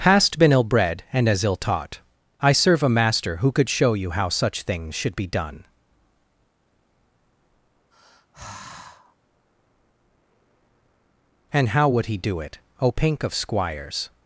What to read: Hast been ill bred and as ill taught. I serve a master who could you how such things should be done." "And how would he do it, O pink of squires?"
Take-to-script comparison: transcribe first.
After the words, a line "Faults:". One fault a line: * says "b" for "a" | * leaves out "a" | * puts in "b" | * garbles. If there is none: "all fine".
Hast been ill bred and as ill taught. I serve a master who could show you how such things should be done." "And how would he do it, O pink of squires?"
Faults:
* puts in "show"